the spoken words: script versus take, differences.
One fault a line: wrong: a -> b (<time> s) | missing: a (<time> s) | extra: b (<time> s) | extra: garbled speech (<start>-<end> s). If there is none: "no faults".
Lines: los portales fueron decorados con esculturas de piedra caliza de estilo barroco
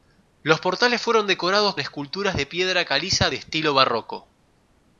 missing: con (1.8 s)